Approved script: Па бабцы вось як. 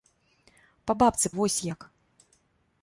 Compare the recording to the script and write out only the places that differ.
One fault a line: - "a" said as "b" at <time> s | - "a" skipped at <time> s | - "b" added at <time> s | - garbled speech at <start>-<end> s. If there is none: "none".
none